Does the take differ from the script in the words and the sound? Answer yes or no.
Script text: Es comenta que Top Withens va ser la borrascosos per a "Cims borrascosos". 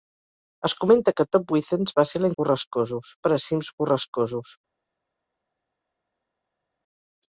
no